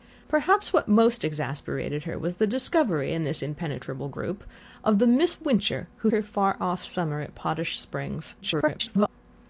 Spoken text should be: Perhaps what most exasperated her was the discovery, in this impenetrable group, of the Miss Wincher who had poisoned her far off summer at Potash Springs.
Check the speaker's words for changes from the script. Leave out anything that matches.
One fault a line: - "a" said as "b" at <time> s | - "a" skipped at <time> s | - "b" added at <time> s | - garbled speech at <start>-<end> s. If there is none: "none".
- "had poisoned" skipped at 6.1 s
- garbled speech at 8.4-9.1 s